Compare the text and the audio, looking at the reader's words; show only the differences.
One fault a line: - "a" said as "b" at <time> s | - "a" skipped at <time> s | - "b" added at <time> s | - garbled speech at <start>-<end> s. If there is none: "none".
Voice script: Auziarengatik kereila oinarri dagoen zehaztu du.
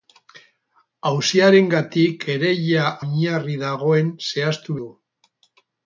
none